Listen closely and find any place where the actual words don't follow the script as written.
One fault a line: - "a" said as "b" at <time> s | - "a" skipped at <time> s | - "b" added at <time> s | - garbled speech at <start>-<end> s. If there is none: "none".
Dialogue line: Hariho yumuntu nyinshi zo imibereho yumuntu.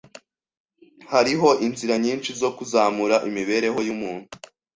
- "yumuntu" said as "inzira" at 1.6 s
- "kuzamura" added at 2.6 s